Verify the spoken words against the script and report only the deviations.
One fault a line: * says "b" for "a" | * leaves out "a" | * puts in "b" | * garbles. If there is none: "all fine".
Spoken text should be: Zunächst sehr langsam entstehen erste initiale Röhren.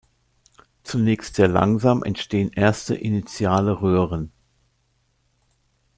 all fine